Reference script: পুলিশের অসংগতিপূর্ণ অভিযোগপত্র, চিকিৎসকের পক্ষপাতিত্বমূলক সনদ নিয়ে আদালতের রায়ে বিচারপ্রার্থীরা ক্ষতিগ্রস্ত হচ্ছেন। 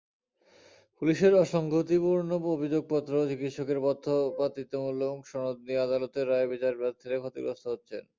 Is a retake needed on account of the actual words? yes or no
no